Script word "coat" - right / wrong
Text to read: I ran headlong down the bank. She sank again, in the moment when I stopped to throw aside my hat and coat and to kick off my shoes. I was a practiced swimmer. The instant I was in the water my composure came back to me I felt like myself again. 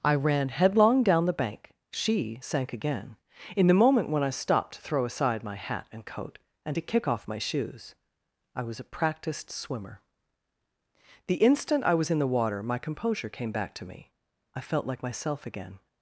right